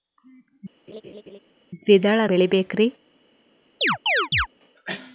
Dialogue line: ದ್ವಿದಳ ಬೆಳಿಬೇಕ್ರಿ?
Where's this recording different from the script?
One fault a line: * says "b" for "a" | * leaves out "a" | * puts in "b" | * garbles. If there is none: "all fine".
all fine